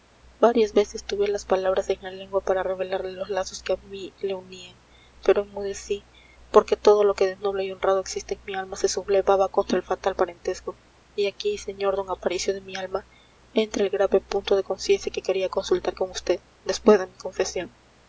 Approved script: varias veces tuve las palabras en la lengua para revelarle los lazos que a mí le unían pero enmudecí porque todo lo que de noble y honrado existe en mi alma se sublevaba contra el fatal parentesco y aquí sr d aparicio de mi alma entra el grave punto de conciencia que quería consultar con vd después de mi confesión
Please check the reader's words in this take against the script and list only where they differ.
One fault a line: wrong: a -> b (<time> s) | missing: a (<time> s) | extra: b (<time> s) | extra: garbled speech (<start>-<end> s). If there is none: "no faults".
no faults